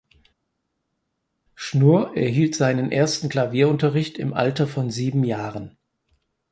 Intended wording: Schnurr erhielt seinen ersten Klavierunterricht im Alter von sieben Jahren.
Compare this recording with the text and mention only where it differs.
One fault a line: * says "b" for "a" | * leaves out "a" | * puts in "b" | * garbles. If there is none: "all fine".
all fine